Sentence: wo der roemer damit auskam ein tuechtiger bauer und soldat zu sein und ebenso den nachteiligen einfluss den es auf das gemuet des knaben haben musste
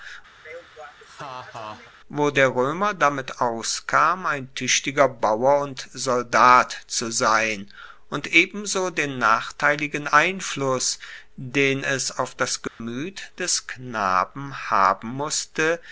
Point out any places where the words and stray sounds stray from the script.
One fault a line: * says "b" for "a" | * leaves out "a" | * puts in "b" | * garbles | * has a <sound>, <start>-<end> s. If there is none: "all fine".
* has a laugh, 0.4-1.9 s
* has a dropout, 12.7-12.8 s